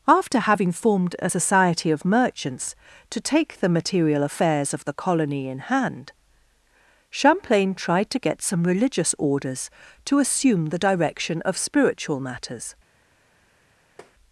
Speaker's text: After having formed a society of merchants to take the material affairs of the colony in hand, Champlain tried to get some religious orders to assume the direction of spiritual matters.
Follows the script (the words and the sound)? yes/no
no